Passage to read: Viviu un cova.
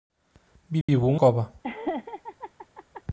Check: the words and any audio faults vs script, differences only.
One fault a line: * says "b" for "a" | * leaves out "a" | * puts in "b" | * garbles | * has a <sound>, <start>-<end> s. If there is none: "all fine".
* has a dropout, 0.8-0.9 s
* has a laugh, 1.6-3.0 s